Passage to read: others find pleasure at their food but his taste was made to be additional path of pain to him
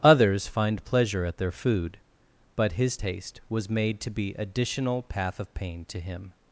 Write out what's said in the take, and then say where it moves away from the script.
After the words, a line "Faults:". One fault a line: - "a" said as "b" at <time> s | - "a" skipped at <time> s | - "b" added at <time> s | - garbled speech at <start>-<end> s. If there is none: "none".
others find pleasure at their food but his taste was made to be additional path of pain to him
Faults:
none